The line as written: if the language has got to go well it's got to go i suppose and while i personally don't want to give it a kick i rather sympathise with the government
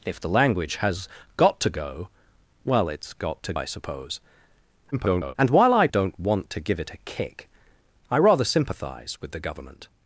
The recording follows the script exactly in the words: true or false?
false